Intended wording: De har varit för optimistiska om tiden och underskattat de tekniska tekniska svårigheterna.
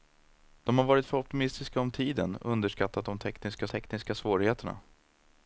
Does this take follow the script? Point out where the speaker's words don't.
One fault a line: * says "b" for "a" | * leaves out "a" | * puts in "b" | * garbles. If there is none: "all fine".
all fine